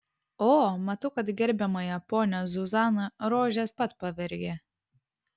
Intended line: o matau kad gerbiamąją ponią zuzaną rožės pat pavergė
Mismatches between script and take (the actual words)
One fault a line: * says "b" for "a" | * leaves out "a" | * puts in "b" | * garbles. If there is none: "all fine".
all fine